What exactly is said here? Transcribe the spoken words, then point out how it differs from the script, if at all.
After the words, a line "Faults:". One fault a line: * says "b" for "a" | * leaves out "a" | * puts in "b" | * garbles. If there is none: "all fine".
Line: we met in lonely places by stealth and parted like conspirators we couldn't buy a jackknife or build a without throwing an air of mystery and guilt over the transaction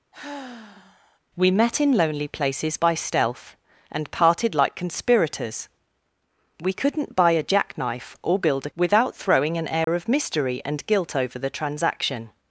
we met in lonely places by stealth and parted like conspirators we couldn't buy a jackknife or build a without throwing an air of mystery and guilt over the transaction
Faults:
all fine